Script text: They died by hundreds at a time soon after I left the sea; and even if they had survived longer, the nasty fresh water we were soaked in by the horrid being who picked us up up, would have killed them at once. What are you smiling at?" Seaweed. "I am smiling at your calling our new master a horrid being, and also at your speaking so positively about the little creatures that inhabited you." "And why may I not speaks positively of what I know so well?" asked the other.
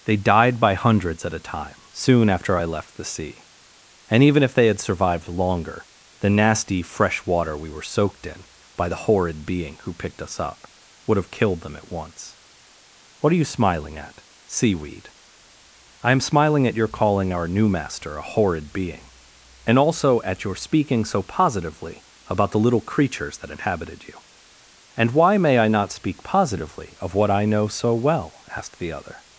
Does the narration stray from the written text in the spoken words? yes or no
yes